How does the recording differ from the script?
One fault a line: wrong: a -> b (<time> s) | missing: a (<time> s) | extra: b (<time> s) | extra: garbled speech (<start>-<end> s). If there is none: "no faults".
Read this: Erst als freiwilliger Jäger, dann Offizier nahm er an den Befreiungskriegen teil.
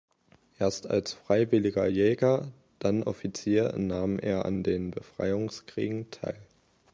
no faults